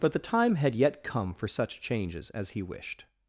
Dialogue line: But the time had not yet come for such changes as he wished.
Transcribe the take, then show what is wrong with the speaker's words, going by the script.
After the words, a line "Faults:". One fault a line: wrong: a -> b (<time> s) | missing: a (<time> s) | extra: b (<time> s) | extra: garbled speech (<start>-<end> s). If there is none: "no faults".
But the time had yet come for such changes as he wished.
Faults:
missing: not (0.7 s)